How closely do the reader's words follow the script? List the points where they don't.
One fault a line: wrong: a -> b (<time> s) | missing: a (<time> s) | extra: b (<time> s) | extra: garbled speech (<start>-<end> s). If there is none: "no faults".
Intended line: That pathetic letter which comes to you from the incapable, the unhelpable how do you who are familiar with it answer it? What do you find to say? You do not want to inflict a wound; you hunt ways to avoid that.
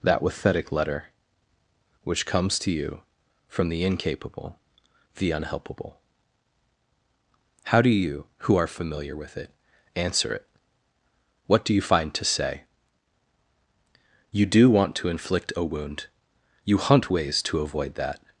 missing: not (14.7 s)